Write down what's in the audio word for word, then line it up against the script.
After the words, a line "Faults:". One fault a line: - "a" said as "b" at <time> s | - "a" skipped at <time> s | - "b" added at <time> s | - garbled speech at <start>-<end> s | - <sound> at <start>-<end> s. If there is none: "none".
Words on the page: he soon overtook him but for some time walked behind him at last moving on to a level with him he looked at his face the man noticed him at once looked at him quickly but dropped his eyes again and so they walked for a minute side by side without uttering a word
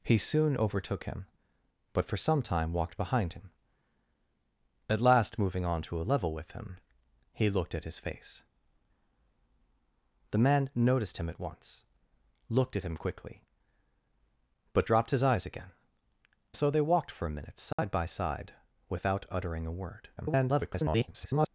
he soon overtook him but for some time walked behind him at last moving on to a level with him he looked at his face the man noticed him at once looked at him quickly but dropped his eyes again so they walked for a minute side by side without uttering a word [garbled]
Faults:
- "and" skipped at 15.7 s
- dropout at 17.7-17.8 s
- garbled speech at 20.2-21.5 s